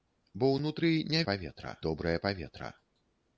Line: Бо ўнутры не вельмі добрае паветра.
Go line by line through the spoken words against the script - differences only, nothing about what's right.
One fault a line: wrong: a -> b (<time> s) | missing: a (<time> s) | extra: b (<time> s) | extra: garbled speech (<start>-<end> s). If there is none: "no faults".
wrong: вельмі -> паветра (1.3 s)